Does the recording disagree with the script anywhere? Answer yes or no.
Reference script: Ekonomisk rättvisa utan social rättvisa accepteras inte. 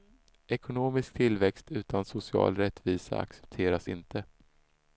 yes